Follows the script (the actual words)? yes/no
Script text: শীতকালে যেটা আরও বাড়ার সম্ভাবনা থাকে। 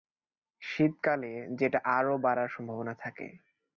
yes